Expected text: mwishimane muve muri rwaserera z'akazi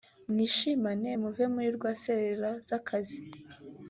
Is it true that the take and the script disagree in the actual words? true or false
false